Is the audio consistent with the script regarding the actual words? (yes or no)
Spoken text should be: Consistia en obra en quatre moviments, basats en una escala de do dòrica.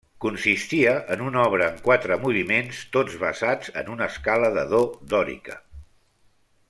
no